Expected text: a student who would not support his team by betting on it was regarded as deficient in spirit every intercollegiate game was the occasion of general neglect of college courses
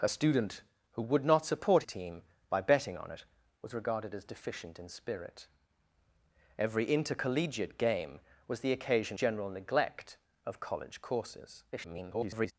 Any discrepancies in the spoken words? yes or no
yes